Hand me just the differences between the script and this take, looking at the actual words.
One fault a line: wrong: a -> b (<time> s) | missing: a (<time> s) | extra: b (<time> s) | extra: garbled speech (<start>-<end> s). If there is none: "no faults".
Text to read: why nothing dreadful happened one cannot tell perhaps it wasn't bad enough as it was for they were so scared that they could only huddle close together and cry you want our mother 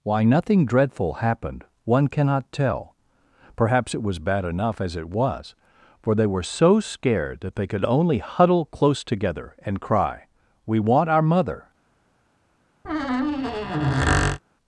wrong: wasn't -> was (4.0 s)
wrong: you -> we (10.7 s)